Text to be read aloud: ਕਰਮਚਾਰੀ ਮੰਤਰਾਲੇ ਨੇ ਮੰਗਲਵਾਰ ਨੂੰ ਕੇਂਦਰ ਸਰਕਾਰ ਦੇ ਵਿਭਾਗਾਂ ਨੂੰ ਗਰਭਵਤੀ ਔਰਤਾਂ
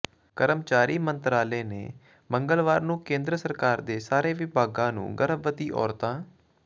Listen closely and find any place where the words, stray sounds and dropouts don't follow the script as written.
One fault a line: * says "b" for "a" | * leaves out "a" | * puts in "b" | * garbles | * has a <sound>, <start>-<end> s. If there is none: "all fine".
* puts in "ਸਾਰੇ"